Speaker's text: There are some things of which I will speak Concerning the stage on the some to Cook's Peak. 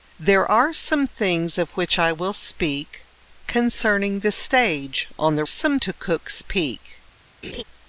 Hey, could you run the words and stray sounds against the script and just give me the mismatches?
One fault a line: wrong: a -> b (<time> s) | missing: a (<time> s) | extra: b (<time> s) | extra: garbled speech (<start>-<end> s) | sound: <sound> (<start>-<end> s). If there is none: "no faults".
sound: laugh (7.4-7.6 s)